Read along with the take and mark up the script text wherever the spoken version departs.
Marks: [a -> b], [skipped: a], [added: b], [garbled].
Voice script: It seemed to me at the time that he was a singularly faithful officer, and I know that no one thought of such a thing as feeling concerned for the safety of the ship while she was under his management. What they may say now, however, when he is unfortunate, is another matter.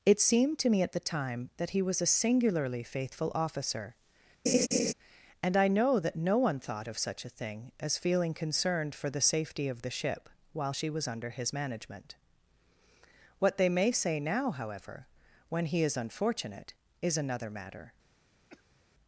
It seemed to me at the time that he was a singularly faithful officer, and I know that no one thought of such a thing as feeling concerned for the safety of the ship while she was under his management. What they may say now, however, when he is unfortunate, is another matter.